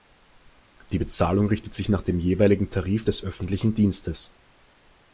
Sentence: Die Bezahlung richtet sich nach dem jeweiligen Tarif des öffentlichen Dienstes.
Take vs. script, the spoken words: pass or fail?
pass